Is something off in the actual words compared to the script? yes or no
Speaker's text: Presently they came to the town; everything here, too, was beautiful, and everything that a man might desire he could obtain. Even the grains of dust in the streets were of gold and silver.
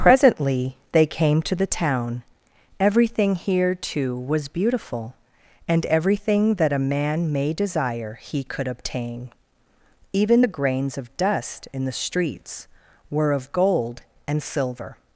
yes